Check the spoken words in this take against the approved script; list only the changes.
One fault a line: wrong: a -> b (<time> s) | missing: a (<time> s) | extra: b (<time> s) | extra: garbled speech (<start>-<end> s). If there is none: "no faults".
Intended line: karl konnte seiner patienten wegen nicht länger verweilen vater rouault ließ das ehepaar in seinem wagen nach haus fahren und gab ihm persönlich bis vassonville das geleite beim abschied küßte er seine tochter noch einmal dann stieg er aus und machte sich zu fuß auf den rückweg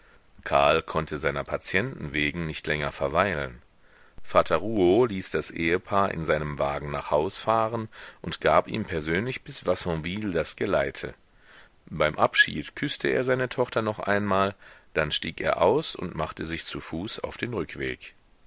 no faults